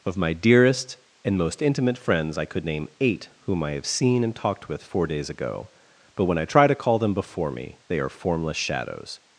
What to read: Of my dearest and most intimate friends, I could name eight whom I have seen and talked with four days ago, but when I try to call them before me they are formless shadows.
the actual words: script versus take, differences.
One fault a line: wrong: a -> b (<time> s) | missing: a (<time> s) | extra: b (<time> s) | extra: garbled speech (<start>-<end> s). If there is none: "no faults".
no faults